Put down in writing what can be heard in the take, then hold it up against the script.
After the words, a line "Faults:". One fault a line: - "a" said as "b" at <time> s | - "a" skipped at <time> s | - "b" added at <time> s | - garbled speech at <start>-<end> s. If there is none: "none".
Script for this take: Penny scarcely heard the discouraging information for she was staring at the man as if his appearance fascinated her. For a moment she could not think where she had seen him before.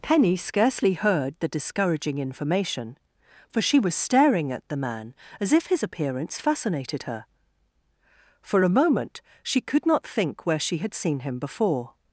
Penny scarcely heard the discouraging information for she was staring at the man as if his appearance fascinated her. For a moment she could not think where she had seen him before.
Faults:
none